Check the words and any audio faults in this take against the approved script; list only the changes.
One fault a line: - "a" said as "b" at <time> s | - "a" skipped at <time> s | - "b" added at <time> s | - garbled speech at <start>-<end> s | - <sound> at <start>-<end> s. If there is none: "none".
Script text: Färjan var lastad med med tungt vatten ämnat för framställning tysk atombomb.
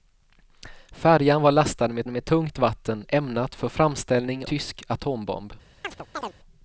- chirp at 5.8-6.4 s